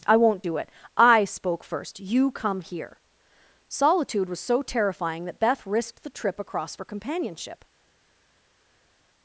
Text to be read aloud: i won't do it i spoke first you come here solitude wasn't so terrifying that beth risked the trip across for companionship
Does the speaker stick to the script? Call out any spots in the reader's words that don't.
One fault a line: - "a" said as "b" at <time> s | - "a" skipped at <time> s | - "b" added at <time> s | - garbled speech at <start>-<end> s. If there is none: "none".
- "wasn't" said as "was" at 4.3 s